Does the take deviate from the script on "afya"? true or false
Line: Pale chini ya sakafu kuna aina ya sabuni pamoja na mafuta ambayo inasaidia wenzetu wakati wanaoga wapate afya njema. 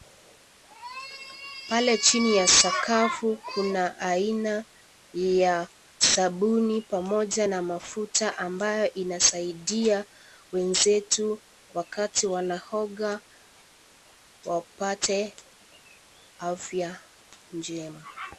false